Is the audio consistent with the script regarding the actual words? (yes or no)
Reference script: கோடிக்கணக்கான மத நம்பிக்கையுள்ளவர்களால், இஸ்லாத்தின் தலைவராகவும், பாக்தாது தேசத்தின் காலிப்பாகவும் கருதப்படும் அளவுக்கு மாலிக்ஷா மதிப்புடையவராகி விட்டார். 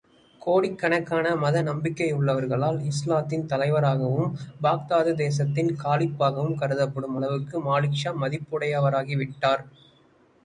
yes